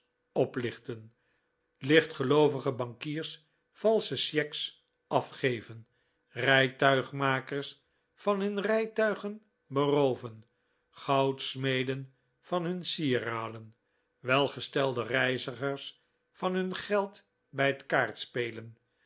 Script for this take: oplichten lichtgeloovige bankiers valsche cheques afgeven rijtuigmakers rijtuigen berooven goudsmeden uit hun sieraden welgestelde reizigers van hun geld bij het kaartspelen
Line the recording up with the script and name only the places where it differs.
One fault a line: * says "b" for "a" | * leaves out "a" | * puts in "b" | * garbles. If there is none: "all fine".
* puts in "van hun"
* says "van" for "uit"